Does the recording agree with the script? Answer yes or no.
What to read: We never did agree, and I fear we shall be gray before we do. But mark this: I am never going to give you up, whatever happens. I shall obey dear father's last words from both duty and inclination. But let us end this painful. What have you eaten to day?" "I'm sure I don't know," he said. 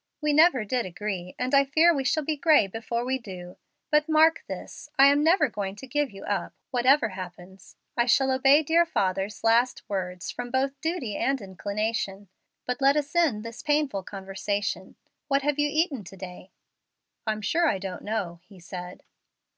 no